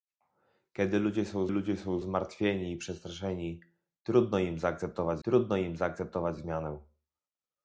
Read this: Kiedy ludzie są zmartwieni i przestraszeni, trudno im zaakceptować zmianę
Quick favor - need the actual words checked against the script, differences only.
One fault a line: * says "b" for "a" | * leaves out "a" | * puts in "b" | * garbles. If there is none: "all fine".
* puts in "ludzie są"
* puts in "trudno im zaakceptować"